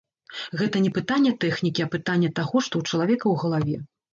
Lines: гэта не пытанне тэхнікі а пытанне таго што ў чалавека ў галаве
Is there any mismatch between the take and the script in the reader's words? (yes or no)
no